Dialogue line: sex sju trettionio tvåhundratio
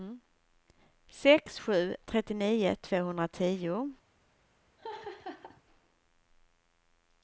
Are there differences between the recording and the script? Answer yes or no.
no